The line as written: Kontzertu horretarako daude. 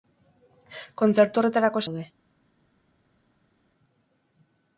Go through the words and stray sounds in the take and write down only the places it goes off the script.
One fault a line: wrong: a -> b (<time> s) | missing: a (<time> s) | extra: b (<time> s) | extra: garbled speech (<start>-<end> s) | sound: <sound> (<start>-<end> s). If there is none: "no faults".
no faults